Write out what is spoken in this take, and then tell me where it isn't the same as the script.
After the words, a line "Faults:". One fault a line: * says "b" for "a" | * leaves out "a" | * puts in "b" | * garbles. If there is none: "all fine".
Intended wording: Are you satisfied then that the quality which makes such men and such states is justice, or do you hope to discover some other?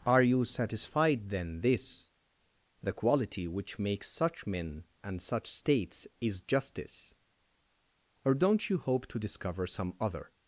Are you satisfied then this the quality which makes such men and such states is justice, or don't you hope to discover some other?
Faults:
* says "this" for "that"
* says "don't" for "do"